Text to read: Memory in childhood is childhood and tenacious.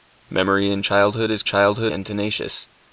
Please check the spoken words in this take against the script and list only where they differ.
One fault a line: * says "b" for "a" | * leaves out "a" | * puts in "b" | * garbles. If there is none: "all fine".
all fine